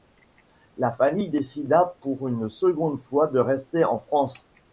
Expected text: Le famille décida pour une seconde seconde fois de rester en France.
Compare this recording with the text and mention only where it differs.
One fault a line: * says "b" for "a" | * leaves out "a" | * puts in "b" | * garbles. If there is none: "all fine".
* says "La" for "Le"
* leaves out "seconde"